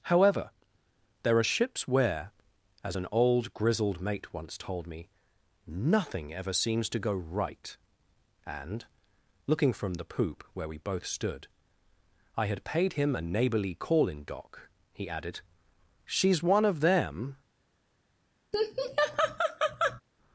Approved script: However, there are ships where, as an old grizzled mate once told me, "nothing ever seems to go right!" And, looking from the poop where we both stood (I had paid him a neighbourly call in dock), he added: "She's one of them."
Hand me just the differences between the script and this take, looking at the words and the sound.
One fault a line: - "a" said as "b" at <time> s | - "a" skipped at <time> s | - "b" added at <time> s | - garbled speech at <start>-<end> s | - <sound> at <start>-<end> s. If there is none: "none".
- laugh at 18.5-20.0 s